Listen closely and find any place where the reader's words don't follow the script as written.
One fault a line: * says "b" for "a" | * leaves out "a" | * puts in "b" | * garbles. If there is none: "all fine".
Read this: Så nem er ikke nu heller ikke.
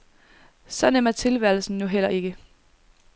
* says "tilværelsen" for "ikke"